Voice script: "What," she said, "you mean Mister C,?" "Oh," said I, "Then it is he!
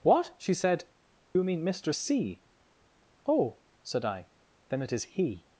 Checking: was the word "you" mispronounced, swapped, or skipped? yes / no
no